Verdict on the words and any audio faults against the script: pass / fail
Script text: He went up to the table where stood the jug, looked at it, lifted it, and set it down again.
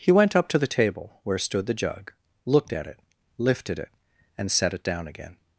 pass